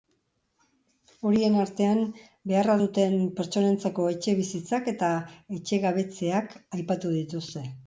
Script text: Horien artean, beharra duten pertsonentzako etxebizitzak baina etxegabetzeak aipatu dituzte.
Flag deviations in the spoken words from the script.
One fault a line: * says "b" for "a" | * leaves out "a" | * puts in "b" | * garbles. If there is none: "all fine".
* says "eta" for "baina"